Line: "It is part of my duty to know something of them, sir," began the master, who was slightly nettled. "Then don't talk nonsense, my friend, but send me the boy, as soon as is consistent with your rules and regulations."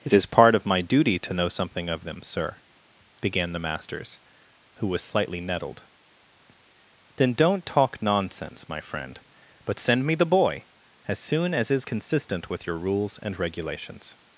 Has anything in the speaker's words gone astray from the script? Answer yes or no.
yes